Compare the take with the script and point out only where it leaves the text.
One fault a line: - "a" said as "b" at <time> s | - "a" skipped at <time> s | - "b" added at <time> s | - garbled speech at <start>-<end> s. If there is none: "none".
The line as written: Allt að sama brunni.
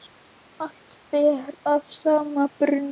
- "ber" added at 1.1 s